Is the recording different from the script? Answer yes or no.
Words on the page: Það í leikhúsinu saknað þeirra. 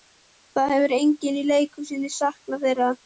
yes